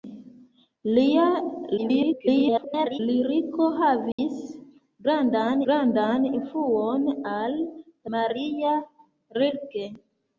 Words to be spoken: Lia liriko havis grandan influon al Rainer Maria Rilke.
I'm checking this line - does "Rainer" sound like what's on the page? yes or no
no